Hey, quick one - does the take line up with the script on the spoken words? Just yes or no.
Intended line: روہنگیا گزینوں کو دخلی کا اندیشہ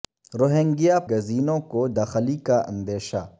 yes